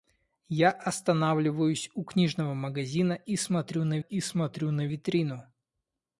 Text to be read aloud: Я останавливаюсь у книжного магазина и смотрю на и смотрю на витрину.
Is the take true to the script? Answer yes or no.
yes